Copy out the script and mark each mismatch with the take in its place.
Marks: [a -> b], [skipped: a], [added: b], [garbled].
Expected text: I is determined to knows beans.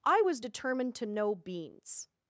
I [is -> was] determined to [knows -> know] beans.